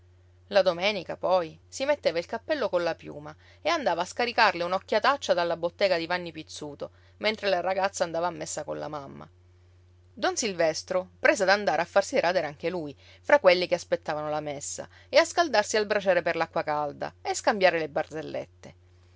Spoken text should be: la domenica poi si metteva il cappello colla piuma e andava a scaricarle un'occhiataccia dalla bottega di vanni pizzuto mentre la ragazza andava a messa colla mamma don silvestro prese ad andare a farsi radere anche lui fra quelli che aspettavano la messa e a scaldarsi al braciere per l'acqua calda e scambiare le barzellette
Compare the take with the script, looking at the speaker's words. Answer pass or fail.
pass